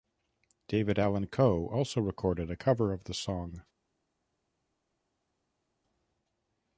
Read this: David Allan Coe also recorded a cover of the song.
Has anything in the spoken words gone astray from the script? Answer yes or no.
no